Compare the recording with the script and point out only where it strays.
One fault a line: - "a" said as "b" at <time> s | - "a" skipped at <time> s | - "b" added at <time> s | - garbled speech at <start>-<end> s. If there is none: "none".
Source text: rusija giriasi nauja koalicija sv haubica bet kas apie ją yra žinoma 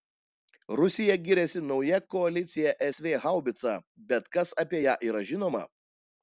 none